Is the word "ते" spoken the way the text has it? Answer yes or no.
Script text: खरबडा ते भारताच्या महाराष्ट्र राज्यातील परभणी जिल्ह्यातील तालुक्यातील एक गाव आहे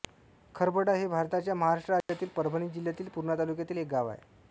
no